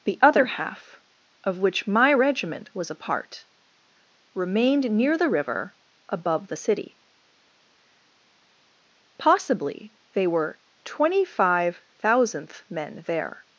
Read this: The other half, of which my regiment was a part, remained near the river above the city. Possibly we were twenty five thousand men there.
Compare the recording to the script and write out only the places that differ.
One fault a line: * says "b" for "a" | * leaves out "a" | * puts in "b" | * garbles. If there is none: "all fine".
* says "they" for "we"
* says "thousandth" for "thousand"